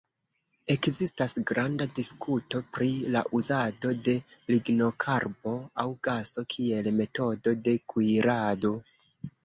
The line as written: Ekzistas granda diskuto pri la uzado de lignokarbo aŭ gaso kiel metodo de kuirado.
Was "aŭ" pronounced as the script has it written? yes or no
yes